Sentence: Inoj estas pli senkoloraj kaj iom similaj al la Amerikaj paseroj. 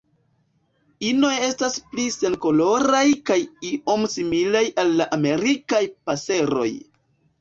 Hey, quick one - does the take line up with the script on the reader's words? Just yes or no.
yes